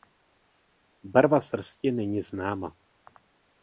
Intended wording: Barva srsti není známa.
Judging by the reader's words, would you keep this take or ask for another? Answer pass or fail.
pass